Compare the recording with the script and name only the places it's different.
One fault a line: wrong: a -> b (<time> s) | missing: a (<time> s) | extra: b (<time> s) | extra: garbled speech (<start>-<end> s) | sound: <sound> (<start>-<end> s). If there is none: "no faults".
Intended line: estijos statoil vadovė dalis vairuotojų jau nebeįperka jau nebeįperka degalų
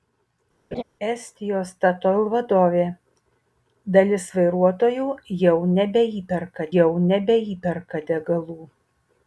sound: laugh (0.7-0.8 s)